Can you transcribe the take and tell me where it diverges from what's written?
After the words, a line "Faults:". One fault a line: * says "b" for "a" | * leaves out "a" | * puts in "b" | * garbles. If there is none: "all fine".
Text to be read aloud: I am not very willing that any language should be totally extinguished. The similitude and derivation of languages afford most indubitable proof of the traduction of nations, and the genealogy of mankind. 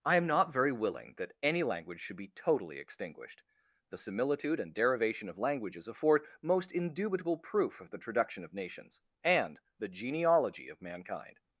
I am not very willing that any language should be totally extinguished. The similitude and derivation of languages afford most indubitable proof of the traduction of nations, and the genealogy of mankind.
Faults:
all fine